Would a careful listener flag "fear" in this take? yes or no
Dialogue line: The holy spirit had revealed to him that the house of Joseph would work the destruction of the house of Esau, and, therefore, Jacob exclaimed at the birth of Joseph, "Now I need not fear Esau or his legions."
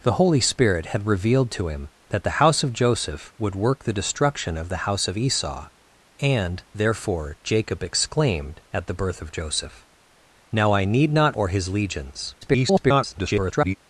yes